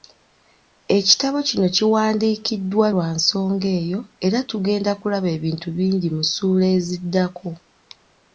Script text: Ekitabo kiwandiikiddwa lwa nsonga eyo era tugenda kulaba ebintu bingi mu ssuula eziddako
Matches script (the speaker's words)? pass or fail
fail